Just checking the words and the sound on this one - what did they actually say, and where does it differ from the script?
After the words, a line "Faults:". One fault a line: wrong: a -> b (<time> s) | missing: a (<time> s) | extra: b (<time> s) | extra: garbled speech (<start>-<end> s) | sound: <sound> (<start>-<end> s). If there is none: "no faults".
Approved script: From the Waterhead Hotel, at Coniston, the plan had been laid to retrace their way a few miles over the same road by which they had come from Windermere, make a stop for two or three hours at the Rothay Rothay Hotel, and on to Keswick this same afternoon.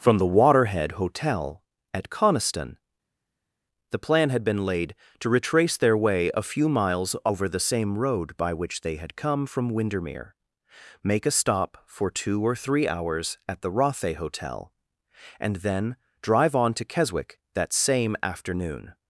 From the Waterhead Hotel, at Coniston, the plan had been laid to retrace their way a few miles over the same road by which they had come from Windermere, make a stop for two or three hours at the Rothay Hotel, and then drive on to Keswick that same afternoon.
Faults:
missing: Rothay (14.1 s)
extra: then drive (15.6 s)
wrong: this -> that (17.5 s)